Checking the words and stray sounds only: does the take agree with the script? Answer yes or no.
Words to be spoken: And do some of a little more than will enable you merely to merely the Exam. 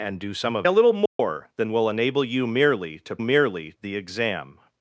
no